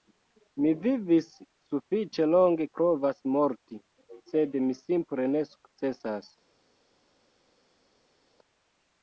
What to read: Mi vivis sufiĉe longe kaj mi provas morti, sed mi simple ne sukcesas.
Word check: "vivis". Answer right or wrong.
right